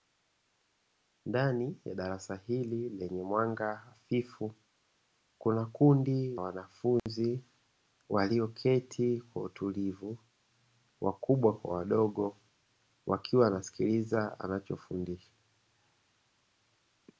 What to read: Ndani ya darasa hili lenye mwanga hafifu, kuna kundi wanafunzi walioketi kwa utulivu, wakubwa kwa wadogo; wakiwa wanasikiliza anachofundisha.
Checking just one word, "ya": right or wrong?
right